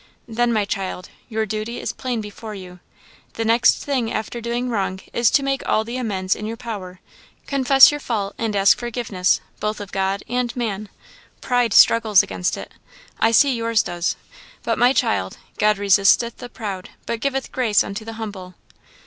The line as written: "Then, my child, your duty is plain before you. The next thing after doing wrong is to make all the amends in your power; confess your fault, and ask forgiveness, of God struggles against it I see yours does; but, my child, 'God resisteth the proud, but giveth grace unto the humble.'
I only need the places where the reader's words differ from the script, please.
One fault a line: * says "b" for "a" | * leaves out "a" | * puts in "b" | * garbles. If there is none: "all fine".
* puts in "both"
* puts in "and man Pride"